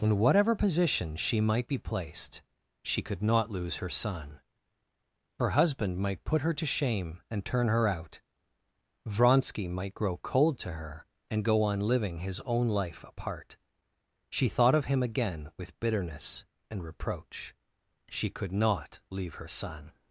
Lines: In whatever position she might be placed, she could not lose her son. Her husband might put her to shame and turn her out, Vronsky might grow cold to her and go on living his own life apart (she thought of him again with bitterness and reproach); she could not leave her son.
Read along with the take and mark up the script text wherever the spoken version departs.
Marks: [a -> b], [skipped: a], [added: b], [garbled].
In whatever position she might be placed, she could not lose her son. Her husband might put her to shame and turn her out, Vronsky might grow cold to her and go on living his own life apart (she thought of him again with bitterness and reproach); she could not leave her son.